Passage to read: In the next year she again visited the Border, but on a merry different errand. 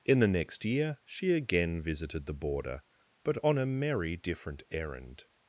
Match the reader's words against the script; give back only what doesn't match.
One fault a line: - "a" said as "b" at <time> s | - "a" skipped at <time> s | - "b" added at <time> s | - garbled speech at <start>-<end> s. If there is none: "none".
none